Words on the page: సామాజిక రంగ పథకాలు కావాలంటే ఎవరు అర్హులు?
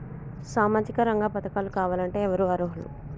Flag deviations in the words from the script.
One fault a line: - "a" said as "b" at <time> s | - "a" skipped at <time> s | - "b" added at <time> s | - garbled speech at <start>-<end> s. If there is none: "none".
none